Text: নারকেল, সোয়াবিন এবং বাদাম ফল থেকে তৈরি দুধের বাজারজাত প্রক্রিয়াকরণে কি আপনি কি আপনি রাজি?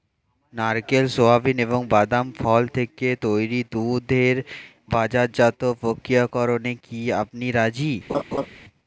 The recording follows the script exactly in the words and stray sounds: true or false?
false